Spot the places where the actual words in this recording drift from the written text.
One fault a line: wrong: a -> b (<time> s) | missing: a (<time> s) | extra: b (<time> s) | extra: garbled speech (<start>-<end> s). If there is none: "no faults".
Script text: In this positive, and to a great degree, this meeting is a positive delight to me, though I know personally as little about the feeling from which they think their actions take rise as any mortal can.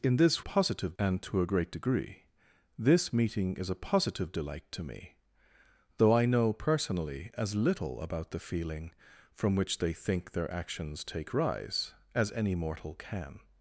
no faults